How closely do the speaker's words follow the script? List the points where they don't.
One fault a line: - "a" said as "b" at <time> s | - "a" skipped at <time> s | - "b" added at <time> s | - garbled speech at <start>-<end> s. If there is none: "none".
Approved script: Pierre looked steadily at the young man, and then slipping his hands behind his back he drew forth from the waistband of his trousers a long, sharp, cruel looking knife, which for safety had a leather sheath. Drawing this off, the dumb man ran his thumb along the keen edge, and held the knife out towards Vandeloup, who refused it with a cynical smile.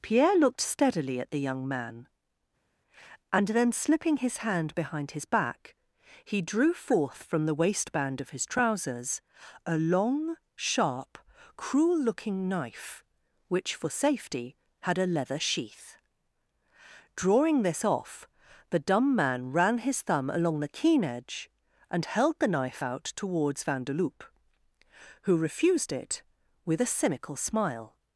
- "hands" said as "hand" at 4.4 s